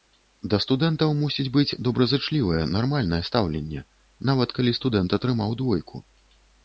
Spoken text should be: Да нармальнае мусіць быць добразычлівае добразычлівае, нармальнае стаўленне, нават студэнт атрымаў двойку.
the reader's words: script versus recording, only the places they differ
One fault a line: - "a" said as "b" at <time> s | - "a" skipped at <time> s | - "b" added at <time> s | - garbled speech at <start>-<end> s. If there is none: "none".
- "нармальнае" said as "студэнтаў" at 0.6 s
- "добразычлівае" skipped at 2.6 s
- "калі" added at 4.6 s